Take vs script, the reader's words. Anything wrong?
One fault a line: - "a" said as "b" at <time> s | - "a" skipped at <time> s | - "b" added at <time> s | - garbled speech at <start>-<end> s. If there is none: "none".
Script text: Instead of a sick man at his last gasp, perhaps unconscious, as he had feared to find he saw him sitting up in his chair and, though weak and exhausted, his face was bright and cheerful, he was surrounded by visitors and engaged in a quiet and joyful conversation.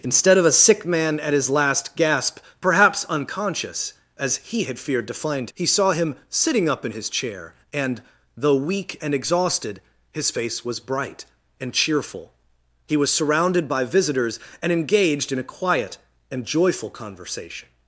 none